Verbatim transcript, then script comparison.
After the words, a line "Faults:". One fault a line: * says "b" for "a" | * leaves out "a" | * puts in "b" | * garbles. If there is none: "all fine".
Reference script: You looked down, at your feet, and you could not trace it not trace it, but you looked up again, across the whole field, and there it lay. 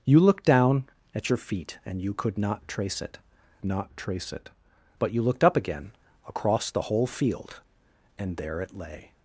You looked down, at your feet, and you could not trace it not trace it, but you looked up again, across the whole field, and there it lay.
Faults:
all fine